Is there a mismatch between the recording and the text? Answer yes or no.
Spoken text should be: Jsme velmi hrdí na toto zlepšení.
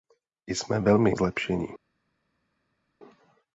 yes